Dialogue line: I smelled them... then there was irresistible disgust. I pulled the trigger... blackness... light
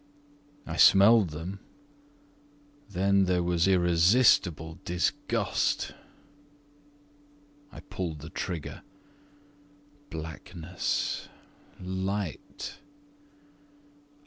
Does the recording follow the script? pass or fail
pass